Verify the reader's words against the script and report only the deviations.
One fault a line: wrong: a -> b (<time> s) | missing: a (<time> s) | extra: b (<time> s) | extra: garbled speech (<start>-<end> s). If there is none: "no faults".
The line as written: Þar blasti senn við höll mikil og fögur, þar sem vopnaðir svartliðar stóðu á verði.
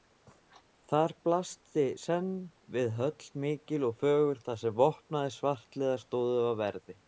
no faults